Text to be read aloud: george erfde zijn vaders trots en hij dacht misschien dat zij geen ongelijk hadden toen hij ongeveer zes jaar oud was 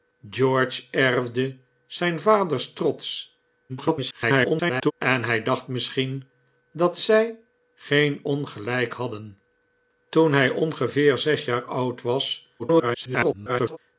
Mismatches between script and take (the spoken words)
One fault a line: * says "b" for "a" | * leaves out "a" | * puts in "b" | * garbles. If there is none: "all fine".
* garbles
* garbles